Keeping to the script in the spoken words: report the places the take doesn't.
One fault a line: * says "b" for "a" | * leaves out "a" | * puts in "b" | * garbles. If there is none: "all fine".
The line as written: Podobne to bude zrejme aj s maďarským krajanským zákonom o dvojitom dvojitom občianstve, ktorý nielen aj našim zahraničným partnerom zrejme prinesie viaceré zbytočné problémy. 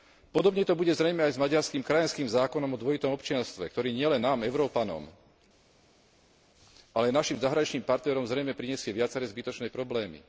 * leaves out "dvojitom"
* puts in "nám Európanom ale"